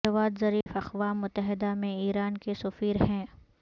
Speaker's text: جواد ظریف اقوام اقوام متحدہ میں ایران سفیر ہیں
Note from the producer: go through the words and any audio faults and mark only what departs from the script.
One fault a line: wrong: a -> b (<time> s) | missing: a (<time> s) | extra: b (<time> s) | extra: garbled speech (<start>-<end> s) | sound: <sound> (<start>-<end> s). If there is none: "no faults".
sound: dropout (0.6-0.7 s)
missing: اقوام (1.2 s)
extra: کے (2.4 s)